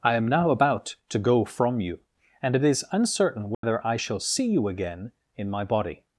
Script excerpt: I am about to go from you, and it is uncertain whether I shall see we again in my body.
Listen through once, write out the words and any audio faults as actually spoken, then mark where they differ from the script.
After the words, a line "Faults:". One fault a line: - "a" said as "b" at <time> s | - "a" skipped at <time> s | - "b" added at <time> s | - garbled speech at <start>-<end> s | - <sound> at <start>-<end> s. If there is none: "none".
I am now about to go from you, and it is uncertain whether I shall see you again in my body.
Faults:
- "now" added at 0.3 s
- dropout at 3.5-3.6 s
- "we" said as "you" at 4.5 s